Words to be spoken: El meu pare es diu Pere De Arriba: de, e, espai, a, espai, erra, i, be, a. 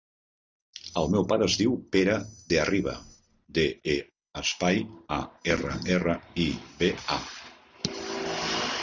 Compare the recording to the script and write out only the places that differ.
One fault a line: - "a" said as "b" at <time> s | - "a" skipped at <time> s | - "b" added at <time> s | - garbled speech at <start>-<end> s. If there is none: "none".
- "espai" said as "erra" at 5.6 s